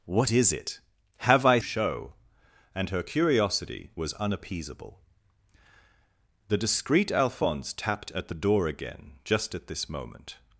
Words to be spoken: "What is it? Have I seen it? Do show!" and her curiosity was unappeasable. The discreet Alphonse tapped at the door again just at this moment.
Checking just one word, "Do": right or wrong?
wrong